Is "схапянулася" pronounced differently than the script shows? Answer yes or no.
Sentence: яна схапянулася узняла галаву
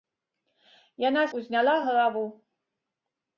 yes